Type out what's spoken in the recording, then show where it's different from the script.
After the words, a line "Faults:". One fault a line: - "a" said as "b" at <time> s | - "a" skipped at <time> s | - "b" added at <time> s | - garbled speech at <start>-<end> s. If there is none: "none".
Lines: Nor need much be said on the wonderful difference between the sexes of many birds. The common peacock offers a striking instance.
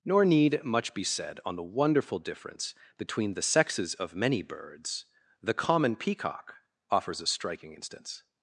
Nor need much be said on the wonderful difference between the sexes of many birds. The common peacock offers a striking instance.
Faults:
none